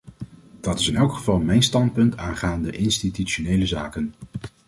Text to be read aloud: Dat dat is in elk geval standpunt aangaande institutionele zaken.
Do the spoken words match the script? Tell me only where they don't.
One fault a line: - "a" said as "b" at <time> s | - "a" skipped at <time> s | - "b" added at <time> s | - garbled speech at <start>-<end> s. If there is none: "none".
- "dat" skipped at 0.8 s
- "mijn" added at 1.4 s